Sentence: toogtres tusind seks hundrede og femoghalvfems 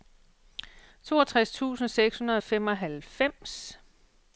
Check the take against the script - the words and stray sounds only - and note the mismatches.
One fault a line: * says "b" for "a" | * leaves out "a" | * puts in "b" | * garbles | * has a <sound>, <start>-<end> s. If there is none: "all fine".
all fine